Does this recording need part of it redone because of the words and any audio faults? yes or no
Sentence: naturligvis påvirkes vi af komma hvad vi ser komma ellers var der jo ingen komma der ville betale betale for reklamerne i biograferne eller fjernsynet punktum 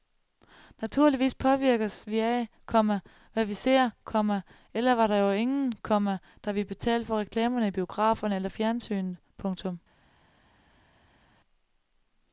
yes